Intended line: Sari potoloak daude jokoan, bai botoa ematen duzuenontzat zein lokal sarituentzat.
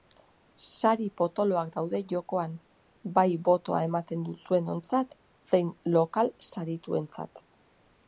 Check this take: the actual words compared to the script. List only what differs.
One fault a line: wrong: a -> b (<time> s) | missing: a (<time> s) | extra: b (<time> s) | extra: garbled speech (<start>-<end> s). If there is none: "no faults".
no faults